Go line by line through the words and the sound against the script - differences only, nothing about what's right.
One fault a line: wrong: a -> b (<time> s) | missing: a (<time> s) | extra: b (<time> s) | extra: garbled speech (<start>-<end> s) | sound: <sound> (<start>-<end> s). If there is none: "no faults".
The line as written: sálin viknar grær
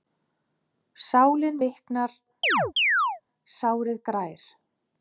sound: chirp (2.4-3.2 s)
extra: sárið (3.6 s)